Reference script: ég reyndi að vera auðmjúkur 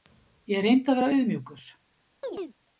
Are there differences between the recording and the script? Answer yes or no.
no